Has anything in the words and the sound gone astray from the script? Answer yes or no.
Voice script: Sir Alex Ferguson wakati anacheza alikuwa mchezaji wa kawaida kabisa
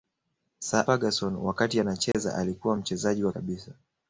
yes